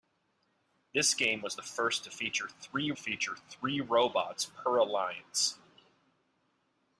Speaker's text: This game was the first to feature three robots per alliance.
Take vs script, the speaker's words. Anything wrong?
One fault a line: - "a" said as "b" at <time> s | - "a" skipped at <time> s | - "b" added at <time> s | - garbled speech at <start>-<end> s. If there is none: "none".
- "feature three" added at 3.0 s